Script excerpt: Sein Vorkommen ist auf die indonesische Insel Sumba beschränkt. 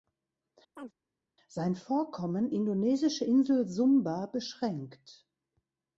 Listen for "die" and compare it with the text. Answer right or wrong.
wrong